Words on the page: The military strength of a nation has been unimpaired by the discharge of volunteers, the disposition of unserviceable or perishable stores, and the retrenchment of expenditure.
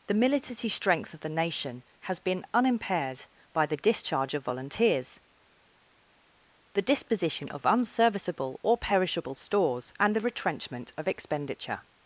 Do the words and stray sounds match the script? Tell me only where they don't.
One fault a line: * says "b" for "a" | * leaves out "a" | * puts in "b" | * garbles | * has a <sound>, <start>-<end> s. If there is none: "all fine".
* says "the" for "a"